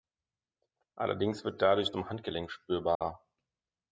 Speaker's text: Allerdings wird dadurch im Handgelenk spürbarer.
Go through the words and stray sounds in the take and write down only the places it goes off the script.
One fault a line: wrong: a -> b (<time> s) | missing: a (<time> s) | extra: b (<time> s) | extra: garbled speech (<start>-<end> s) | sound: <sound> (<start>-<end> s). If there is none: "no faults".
sound: dropout (2.9-3.0 s)